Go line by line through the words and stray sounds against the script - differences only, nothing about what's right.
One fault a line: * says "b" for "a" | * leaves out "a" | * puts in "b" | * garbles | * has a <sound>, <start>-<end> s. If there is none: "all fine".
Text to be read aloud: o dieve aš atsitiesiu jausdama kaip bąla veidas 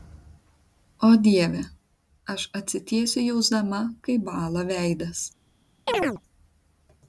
* has a chirp, 5.9-6.2 s